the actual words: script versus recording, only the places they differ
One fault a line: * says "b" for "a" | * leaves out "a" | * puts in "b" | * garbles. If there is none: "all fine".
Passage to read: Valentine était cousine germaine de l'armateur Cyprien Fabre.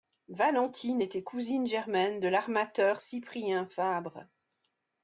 all fine